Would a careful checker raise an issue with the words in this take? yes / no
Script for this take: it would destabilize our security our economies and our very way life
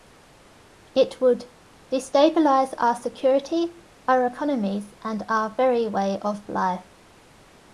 yes